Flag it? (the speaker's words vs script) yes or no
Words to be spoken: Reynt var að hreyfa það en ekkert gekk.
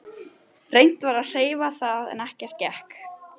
no